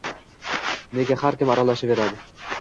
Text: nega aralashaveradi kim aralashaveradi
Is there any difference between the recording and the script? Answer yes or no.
yes